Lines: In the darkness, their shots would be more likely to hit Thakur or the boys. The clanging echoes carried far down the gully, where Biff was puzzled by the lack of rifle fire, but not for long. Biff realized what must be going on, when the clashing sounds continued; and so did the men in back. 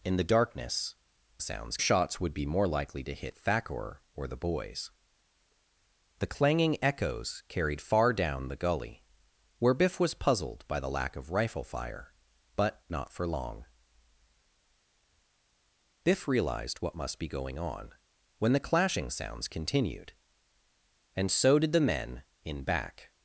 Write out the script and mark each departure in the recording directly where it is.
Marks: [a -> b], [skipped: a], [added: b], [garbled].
In the darkness, [their -> sounds] shots would be more likely to hit Thakur or the boys. The clanging echoes carried far down the gully, where Biff was puzzled by the lack of rifle fire, but not for long. Biff realized what must be going on, when the clashing sounds continued; and so did the men in back.